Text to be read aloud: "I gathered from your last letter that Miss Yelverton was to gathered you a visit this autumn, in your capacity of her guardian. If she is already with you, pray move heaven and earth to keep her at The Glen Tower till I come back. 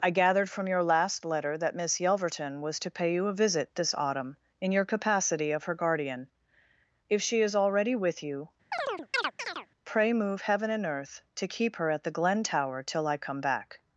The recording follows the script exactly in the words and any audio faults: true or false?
false